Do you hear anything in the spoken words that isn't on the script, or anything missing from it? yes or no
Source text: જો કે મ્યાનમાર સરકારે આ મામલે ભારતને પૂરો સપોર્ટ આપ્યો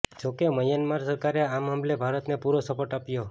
no